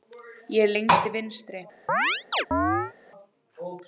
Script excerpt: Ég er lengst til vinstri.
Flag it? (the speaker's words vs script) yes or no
no